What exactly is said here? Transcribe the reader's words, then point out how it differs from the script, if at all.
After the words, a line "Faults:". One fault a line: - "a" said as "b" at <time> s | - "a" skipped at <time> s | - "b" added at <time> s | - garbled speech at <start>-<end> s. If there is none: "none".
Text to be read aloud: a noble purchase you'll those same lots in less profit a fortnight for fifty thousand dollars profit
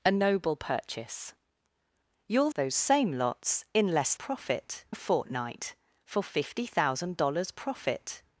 a noble purchase you'll those same lots in less profit a fortnight for fifty thousand dollars profit
Faults:
none